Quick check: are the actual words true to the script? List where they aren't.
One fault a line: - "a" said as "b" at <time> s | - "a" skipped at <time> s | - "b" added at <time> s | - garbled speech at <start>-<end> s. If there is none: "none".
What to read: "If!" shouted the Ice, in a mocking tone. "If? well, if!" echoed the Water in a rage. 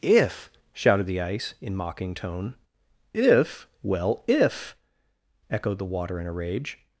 - "a" skipped at 1.8 s